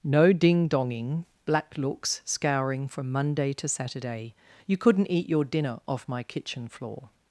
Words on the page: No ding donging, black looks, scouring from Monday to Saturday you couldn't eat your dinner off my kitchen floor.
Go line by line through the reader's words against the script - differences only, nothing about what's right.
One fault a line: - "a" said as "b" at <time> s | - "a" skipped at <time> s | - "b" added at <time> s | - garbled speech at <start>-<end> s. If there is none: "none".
none